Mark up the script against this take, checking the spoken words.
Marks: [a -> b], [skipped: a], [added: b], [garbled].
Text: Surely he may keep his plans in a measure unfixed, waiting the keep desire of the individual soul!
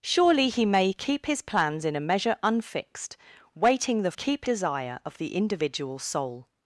Surely he may keep his plans in a measure unfixed, waiting the keep desire of the individual soul!